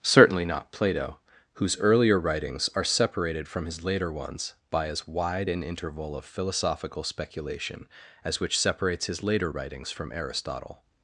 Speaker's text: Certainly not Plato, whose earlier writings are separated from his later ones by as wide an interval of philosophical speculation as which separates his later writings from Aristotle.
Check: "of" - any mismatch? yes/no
no